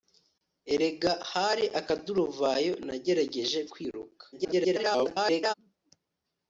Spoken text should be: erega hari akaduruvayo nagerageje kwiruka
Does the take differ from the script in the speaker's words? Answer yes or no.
yes